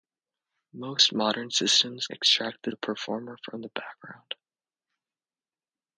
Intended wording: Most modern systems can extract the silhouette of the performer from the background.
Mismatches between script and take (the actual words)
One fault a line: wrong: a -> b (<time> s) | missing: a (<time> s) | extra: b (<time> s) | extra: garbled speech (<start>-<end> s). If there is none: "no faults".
missing: can (2.1 s)
missing: silhouette of (2.7 s)